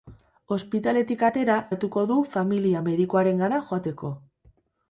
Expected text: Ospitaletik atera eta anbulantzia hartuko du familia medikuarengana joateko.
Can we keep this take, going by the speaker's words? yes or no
no